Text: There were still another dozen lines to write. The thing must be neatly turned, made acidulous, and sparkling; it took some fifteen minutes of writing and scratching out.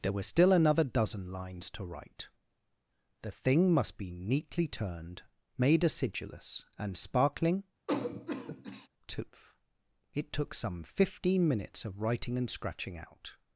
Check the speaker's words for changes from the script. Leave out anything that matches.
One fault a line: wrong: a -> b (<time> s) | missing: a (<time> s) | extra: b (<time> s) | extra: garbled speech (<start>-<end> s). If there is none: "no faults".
extra: tooth (9.1 s)